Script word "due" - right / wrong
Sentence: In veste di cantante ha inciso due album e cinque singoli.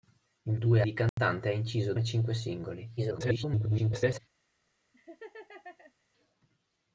wrong